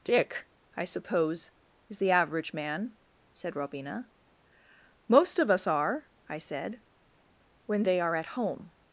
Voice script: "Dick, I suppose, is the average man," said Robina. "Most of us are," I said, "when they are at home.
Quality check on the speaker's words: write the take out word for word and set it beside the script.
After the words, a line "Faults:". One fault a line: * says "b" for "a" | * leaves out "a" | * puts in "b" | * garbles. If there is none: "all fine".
"Dick, I suppose, is the average man," said Robina. "Most of us are," I said, "when they are at home.
Faults:
all fine